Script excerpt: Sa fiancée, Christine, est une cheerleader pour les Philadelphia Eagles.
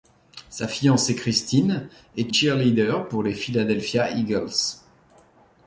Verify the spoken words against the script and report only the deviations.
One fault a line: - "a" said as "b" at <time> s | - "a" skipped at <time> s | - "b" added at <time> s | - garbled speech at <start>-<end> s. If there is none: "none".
- "une" skipped at 2.3 s